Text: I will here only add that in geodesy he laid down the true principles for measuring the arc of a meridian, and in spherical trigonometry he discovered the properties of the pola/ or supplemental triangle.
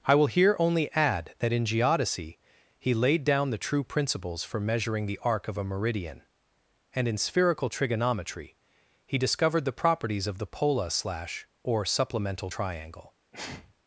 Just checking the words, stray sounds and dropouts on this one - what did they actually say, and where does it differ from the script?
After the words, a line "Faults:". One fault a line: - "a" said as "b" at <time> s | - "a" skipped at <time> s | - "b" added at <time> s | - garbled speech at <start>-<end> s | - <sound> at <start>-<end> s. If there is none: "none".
I will here only add that in geodesy he laid down the true principles for measuring the arc of a meridian, and in spherical trigonometry he discovered the properties of the pola/ slash or supplemental triangle.
Faults:
- "slash" added at 10.9 s
- sneeze at 13.3-13.7 s